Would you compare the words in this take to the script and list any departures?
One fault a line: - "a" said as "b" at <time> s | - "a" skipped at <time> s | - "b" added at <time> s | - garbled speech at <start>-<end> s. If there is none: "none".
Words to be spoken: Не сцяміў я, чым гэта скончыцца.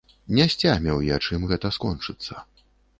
none